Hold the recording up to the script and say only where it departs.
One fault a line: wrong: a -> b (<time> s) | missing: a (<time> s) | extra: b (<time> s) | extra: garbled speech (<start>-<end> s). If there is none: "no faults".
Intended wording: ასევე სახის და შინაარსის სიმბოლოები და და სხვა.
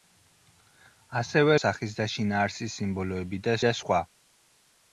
no faults